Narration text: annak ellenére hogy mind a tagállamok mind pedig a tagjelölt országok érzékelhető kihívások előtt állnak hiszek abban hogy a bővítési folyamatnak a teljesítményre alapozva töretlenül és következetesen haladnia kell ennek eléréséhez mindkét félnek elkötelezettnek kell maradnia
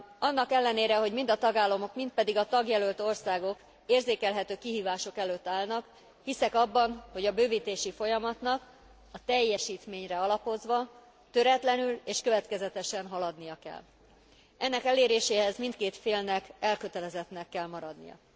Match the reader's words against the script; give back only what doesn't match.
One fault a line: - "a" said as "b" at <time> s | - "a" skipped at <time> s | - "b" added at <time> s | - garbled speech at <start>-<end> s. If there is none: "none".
none